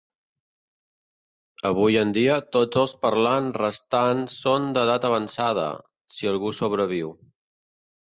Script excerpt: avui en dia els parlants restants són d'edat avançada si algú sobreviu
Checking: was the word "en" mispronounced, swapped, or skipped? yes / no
no